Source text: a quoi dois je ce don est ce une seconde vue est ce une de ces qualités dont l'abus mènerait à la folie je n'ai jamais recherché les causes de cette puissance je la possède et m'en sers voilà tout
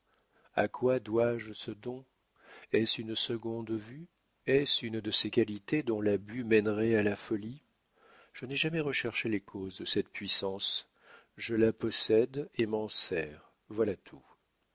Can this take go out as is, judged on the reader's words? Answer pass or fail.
pass